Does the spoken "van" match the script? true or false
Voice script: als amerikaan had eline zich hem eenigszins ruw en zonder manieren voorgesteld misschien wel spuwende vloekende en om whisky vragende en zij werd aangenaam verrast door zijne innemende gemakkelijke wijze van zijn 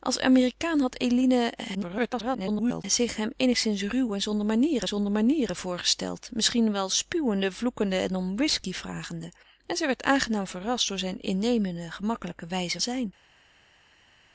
false